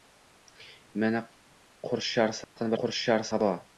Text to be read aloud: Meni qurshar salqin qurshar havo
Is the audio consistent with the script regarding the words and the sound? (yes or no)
no